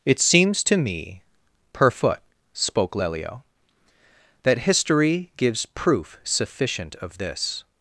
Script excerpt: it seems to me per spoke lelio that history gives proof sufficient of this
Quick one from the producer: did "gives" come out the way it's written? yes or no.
yes